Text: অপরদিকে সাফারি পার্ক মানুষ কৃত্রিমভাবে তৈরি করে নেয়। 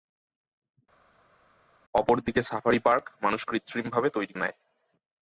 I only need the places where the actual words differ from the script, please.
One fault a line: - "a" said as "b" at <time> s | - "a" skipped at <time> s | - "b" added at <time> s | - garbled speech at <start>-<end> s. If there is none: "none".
- "করে" skipped at 4.3 s